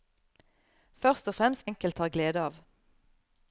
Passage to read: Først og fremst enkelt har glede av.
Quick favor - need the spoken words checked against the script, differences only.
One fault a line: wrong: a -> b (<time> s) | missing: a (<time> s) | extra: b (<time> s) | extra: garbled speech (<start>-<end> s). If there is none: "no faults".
no faults